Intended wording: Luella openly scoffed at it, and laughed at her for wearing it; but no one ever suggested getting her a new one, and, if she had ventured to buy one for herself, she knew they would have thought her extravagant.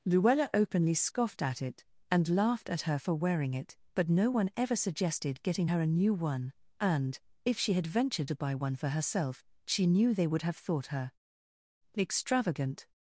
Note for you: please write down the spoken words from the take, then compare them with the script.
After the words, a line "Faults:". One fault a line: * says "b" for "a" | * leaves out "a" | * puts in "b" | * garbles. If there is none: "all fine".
Luella openly scoffed at it, and laughed at her for wearing it; but no one ever suggested getting her a new one, and, if she had ventured to buy one for herself, she knew they would have thought her extravagant.
Faults:
all fine